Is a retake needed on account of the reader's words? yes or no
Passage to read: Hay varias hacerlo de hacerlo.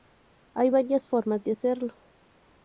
yes